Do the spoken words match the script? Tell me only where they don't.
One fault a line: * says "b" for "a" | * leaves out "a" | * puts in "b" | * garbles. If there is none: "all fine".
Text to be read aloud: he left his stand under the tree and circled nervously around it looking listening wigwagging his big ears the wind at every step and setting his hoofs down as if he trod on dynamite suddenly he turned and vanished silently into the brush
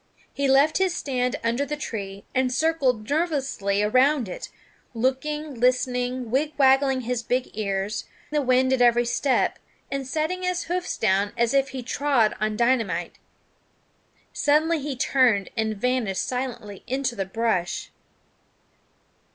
all fine